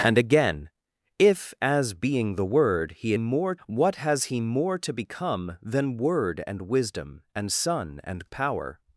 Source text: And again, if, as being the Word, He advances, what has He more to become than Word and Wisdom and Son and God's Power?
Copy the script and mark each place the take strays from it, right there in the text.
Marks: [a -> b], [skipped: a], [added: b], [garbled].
And again, if, as being the Word, He [advances, -> more] what has He more to become than Word and Wisdom and Son and [skipped: God's] Power?